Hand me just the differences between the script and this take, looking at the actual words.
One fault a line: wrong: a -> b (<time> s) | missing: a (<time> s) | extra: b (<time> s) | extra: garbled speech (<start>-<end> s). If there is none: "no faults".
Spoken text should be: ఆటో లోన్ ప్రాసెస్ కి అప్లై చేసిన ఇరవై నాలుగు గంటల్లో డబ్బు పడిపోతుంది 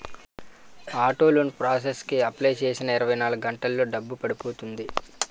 no faults